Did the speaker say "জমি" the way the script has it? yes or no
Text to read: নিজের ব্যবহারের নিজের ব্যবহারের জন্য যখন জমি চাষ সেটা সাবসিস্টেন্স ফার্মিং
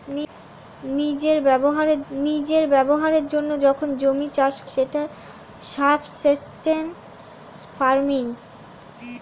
yes